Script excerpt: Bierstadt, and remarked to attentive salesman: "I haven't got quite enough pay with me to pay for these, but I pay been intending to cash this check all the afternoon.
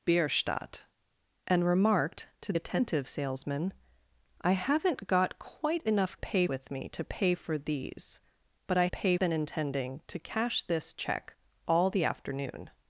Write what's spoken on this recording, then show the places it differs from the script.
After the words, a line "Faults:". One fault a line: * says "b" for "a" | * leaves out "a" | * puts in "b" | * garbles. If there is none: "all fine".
Bierstadt, and remarked to attentive salesman: "I haven't got quite enough pay with me to pay for these, but I pay been intending to cash this check all the afternoon.
Faults:
all fine